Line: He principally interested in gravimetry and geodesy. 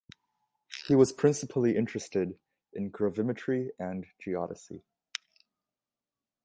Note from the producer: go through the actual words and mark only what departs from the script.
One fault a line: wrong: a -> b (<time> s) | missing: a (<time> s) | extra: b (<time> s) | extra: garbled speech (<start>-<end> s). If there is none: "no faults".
extra: was (0.9 s)